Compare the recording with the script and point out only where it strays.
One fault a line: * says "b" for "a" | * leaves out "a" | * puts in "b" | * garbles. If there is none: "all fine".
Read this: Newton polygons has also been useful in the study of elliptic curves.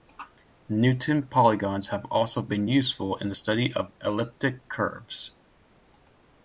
* says "have" for "has"